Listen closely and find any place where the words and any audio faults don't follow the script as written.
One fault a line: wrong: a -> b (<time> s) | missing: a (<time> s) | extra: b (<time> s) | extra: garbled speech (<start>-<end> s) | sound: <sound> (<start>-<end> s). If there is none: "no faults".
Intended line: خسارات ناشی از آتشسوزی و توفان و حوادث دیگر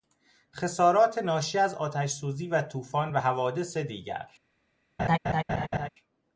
sound: laugh (5.0-5.9 s)